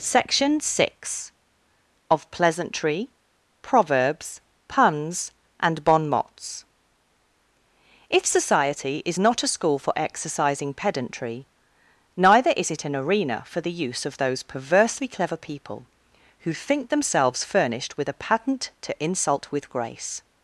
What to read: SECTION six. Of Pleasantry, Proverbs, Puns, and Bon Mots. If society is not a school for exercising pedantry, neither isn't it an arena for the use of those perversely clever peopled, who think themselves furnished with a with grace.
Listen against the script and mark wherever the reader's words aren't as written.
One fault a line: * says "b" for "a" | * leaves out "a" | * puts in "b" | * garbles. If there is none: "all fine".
* says "is" for "isn't"
* says "people" for "peopled"
* puts in "patent to insult"